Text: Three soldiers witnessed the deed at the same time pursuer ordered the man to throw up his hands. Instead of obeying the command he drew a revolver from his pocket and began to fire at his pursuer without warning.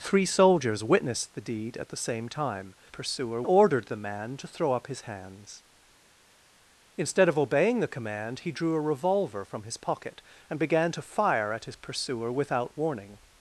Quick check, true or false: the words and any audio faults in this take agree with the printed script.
true